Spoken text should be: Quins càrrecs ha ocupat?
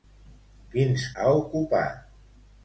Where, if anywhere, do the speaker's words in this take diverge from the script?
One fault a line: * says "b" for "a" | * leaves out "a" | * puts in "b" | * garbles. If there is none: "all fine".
* leaves out "càrrecs"